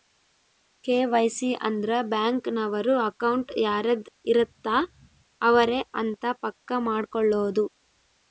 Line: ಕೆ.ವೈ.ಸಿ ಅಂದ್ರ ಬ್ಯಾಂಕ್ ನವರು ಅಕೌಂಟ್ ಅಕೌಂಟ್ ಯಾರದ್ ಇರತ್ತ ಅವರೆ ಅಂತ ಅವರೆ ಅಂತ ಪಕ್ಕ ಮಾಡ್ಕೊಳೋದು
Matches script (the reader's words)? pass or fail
fail